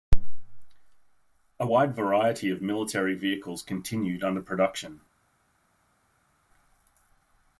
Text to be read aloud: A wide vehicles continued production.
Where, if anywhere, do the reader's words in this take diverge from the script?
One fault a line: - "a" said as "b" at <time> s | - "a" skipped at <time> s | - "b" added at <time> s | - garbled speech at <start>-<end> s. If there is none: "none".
- "variety of military" added at 1.9 s
- "under" added at 4.2 s